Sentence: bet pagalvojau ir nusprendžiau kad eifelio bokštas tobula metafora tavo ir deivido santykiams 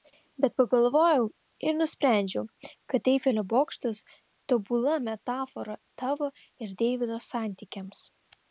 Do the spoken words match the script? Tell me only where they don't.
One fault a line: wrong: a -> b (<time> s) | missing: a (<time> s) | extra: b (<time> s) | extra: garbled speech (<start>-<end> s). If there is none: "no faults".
no faults